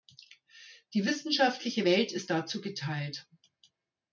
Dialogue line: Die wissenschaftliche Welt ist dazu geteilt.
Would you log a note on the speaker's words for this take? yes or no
no